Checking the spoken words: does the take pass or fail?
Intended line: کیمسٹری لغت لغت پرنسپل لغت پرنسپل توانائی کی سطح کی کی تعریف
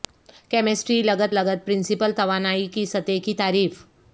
fail